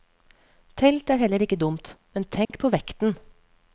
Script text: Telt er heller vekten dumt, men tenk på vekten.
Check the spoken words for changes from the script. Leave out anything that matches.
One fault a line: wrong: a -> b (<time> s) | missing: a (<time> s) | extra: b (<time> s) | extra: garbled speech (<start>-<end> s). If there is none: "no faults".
wrong: vekten -> ikke (1.4 s)